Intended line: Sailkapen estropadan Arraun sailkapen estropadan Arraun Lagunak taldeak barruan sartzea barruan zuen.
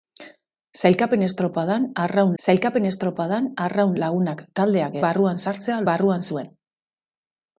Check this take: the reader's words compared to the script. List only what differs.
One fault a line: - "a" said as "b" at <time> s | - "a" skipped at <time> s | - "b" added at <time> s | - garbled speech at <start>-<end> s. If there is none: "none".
none